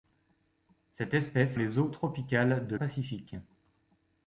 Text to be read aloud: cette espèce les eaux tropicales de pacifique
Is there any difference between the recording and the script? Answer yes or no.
no